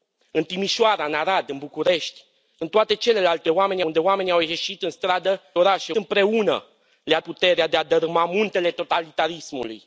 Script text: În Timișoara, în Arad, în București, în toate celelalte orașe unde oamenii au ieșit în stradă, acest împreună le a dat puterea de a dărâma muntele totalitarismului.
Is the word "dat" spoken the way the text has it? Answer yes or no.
no